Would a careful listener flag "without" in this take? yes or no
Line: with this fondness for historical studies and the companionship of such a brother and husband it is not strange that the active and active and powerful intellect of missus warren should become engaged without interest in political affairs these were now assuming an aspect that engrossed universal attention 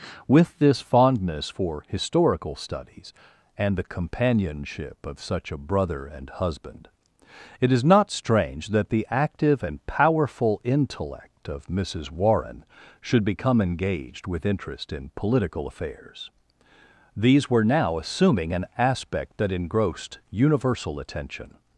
yes